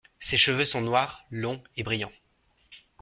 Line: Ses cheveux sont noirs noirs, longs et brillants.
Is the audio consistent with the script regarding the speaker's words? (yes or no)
no